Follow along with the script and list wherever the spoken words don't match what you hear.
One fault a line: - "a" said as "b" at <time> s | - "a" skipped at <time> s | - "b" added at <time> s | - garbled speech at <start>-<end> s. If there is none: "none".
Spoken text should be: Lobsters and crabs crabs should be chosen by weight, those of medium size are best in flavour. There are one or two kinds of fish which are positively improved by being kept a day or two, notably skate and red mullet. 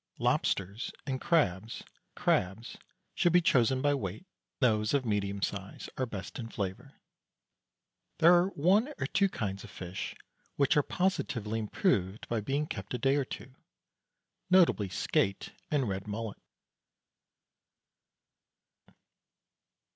none